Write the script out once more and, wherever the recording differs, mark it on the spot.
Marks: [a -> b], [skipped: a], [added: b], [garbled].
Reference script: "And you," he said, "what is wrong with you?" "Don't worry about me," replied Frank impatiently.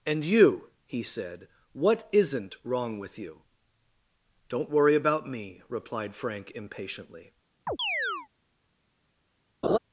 "And you," he said, "what [is -> isn't] wrong with you?" "Don't worry about me," replied Frank impatiently.